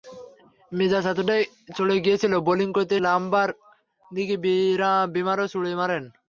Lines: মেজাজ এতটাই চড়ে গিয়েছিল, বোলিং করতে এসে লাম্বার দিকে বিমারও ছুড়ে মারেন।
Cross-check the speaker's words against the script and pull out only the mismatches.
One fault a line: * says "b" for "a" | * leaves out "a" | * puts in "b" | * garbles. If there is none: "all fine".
* leaves out "এসে"